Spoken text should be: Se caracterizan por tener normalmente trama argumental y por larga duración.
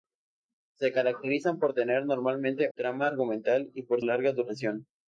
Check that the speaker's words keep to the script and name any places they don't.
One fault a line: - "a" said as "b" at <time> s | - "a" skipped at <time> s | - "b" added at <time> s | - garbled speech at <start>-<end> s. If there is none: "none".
none